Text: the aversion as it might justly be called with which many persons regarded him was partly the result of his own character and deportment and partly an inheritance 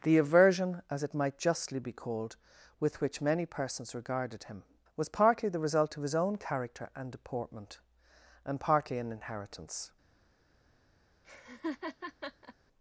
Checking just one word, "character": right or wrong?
right